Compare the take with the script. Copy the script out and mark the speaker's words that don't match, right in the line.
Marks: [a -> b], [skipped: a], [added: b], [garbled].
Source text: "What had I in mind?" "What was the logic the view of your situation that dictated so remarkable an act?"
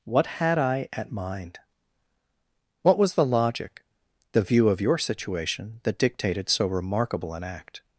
"What had I [in -> at] mind?" "What was the logic the view of your situation that dictated so remarkable an act?"